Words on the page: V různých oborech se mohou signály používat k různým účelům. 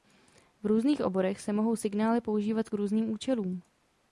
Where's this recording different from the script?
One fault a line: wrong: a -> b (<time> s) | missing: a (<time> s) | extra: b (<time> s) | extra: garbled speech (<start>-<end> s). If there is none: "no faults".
no faults